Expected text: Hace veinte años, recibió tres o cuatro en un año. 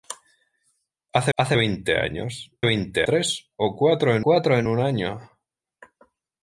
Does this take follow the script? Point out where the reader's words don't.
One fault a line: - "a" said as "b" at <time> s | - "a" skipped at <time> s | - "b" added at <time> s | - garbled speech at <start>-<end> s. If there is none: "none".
- "hace" added at 1.4 s
- "recibió" said as "veinte" at 2.6 s
- "cuatro en" added at 4.2 s